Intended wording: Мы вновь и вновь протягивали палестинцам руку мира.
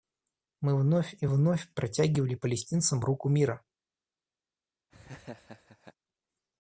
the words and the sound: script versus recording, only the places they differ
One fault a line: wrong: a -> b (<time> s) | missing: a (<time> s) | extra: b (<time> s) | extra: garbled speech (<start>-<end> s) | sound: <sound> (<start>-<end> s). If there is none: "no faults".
sound: laugh (4.9-5.9 s)